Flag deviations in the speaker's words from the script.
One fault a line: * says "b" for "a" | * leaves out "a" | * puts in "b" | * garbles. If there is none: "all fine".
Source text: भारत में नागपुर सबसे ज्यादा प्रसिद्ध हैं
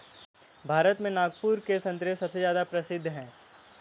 * puts in "के संतरे"